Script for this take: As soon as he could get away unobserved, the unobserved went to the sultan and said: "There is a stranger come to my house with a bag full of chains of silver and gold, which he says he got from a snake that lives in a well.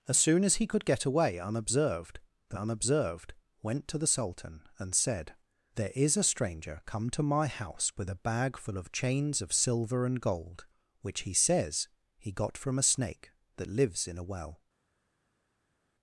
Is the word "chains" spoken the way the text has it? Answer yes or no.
yes